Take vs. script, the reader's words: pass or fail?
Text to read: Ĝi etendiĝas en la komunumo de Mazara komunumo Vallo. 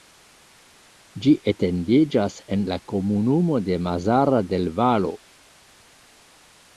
fail